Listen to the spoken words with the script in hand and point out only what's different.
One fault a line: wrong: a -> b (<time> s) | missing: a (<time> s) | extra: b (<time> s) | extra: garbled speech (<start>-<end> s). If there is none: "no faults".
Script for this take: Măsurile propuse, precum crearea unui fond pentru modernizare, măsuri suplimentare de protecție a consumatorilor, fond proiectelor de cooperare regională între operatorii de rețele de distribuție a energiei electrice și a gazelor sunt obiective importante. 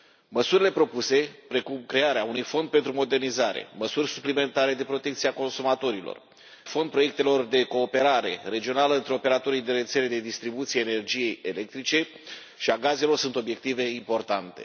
no faults